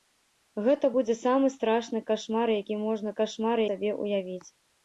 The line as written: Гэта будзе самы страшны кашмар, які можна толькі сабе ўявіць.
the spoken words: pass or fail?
fail